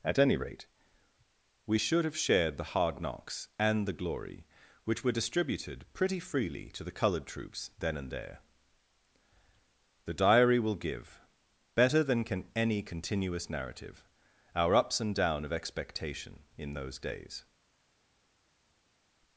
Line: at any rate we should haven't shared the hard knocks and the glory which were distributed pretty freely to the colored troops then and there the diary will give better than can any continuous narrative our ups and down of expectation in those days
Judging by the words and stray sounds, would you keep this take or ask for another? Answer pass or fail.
fail